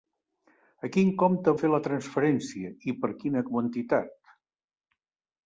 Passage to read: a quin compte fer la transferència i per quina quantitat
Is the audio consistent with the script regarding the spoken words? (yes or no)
yes